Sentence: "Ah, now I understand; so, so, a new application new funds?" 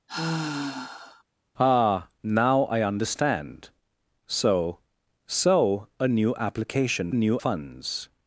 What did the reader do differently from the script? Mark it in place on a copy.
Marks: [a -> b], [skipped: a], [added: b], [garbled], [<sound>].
[sigh] "Ah, now I understand; so, so, a new application new funds?"